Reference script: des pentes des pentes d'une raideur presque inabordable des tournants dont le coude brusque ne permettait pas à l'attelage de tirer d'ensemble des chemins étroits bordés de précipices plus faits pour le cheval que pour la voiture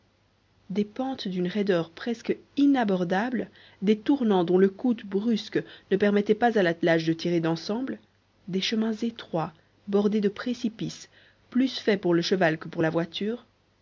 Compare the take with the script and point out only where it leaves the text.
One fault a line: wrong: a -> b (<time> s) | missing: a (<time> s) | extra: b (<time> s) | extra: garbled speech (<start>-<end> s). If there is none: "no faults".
missing: des pentes (1.3 s)